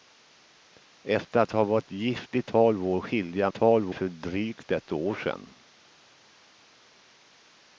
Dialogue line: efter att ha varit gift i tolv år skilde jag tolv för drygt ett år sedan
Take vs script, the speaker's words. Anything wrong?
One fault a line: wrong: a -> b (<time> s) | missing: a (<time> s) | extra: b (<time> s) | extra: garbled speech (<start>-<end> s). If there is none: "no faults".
no faults